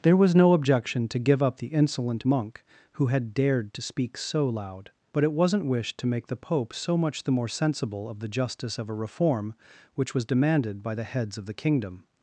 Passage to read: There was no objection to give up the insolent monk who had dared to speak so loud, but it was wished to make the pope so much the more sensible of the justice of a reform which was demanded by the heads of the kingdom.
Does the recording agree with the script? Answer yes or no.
no